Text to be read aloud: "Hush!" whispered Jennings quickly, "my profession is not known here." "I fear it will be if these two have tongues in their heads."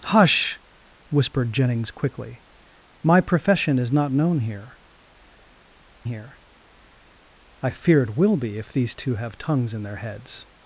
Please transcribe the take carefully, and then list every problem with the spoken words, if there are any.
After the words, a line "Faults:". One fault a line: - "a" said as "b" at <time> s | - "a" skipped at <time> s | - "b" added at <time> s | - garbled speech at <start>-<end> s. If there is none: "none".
"Hush!" whispered Jennings quickly, "my profession is not known here here." "I fear it will be if these two have tongues in their heads."
Faults:
- "here" added at 6.0 s